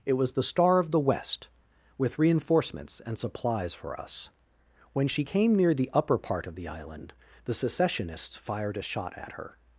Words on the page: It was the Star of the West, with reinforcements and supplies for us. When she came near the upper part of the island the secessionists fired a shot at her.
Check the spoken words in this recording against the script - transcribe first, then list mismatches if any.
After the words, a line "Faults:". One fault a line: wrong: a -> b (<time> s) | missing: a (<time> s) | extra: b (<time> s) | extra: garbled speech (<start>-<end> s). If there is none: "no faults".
It was the Star of the West, with reinforcements and supplies for us. When she came near the upper part of the island the secessionists fired a shot at her.
Faults:
no faults